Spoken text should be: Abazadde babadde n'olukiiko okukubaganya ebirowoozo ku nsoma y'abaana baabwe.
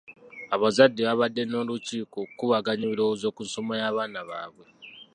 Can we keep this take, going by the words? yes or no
yes